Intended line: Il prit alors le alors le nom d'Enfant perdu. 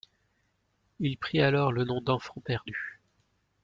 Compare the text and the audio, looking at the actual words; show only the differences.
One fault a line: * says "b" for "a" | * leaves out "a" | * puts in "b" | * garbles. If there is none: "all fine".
* leaves out "alors le"